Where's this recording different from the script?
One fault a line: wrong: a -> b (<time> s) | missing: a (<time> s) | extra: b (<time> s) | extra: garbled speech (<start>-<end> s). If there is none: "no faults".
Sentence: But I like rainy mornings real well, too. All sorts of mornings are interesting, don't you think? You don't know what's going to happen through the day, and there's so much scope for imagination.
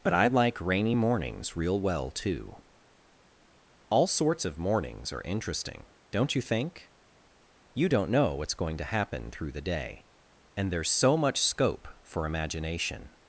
no faults